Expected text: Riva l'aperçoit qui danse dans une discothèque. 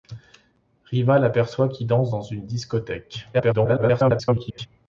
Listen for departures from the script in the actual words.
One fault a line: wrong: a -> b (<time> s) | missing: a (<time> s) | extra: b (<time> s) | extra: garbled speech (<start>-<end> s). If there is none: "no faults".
extra: garbled speech (3.3-4.7 s)